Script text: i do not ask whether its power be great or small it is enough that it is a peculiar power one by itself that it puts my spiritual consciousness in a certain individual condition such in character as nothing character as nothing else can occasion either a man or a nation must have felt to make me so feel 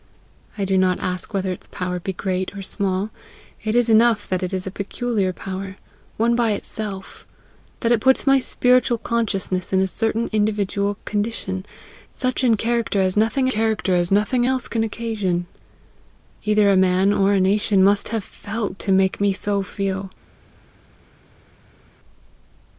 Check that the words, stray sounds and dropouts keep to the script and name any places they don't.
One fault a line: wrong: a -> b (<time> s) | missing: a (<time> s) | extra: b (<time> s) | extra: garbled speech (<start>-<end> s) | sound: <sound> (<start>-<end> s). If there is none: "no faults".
no faults